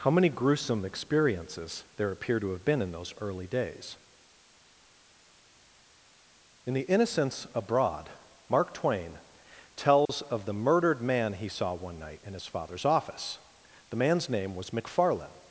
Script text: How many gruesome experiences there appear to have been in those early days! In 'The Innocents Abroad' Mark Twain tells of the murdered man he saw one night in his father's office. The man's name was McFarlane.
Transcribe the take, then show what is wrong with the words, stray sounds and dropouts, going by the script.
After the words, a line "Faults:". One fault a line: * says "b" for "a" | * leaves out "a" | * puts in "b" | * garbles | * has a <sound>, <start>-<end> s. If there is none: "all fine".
How many gruesome experiences there appear to have been in those early days! In 'The Innocents Abroad' Mark Twain tells of the murdered man he saw one night in his father's office. The man's name was McFarlane.
Faults:
* has a dropout, 10.1-10.1 s